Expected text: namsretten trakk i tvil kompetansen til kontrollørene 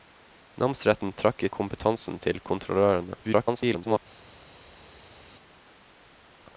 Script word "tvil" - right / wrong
wrong